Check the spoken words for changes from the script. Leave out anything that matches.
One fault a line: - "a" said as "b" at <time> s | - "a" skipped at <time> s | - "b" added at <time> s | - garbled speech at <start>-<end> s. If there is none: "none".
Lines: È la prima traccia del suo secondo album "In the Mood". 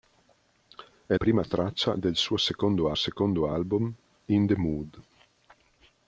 - "la" skipped at 1.1 s
- "secondo" added at 2.9 s